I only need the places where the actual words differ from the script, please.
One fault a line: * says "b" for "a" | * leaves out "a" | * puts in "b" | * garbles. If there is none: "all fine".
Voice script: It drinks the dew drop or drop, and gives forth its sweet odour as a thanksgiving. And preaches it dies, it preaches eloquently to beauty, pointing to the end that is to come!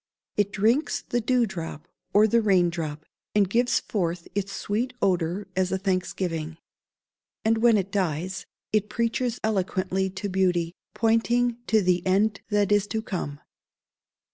* puts in "the rain"
* says "when" for "preaches"